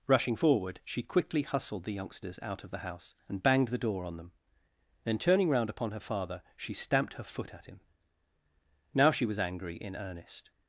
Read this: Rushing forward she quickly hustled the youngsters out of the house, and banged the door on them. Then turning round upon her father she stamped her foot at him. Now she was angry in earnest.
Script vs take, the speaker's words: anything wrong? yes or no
no